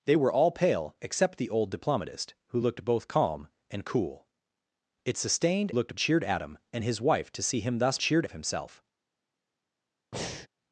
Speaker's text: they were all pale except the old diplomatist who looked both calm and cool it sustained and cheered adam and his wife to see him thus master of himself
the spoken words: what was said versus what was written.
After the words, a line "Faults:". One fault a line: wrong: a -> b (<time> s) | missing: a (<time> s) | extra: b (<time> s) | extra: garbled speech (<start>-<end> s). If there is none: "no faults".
they were all pale except the old diplomatist who looked both calm and cool it sustained looked cheered adam and his wife to see him thus cheered of himself
Faults:
wrong: and -> looked (5.7 s)
wrong: master -> cheered (8.0 s)